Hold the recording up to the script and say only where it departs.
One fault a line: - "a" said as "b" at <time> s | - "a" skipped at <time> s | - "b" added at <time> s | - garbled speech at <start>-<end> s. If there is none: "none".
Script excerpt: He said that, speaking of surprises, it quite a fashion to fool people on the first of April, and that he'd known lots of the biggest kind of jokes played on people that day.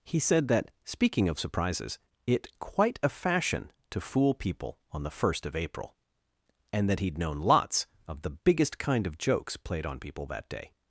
none